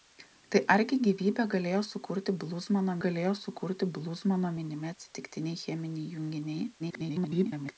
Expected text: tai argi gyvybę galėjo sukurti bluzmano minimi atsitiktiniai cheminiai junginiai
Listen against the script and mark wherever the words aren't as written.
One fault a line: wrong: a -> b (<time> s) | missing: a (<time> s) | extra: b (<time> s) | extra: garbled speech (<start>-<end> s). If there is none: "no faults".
extra: galėjo sukurti bluzmano (3.0 s)
extra: garbled speech (6.8-7.8 s)